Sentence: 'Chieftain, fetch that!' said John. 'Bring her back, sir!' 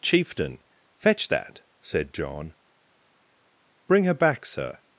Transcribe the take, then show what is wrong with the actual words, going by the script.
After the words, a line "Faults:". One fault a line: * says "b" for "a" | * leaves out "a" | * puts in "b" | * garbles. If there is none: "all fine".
'Chieftain, fetch that!' said John. 'Bring her back, sir!'
Faults:
all fine